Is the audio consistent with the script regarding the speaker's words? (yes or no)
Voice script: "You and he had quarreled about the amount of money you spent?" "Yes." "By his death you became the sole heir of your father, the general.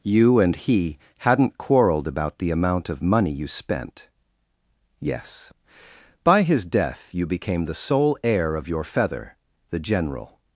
no